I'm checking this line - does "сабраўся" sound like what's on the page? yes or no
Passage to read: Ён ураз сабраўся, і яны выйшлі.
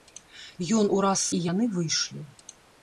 no